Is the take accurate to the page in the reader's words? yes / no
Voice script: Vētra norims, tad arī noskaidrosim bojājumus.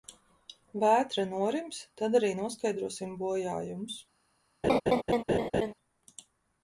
yes